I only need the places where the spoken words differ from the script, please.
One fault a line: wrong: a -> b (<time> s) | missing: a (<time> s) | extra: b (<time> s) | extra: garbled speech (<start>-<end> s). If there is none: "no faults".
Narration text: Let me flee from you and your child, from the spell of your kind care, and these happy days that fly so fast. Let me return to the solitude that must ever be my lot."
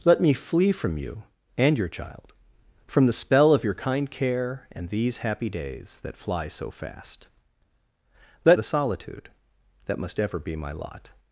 missing: me return to (8.6 s)